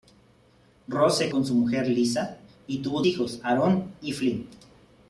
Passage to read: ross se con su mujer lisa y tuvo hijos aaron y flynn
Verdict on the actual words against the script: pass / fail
pass